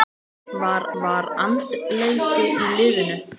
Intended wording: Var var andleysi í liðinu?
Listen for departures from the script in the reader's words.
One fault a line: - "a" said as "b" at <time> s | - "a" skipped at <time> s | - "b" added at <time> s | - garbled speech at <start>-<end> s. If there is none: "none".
none